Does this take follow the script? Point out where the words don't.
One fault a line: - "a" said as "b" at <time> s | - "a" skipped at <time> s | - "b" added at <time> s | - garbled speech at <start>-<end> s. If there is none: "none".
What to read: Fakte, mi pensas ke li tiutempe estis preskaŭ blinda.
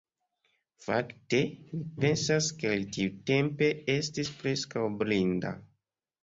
none